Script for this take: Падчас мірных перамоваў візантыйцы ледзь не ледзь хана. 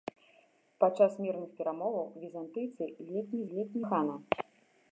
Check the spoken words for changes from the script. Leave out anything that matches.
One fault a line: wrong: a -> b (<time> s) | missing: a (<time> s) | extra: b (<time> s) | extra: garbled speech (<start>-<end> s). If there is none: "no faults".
no faults